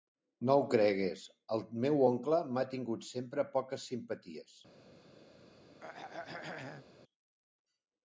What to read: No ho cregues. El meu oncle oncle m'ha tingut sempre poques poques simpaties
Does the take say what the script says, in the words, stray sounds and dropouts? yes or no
no